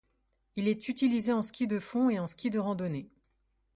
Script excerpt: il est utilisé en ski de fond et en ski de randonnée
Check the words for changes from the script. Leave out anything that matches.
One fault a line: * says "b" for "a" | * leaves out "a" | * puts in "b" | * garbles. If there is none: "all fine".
all fine